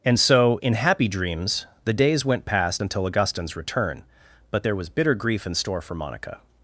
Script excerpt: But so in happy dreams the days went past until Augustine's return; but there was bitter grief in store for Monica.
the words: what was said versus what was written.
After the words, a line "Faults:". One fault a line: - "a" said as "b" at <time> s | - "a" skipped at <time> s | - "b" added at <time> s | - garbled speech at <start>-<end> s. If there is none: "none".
And so in happy dreams the days went past until Augustine's return; but there was bitter grief in store for Monica.
Faults:
- "But" said as "And" at 0.0 s